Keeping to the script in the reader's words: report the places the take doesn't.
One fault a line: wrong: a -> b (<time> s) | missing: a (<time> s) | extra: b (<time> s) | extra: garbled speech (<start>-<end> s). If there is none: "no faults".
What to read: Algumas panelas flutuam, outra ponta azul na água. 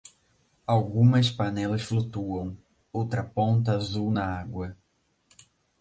no faults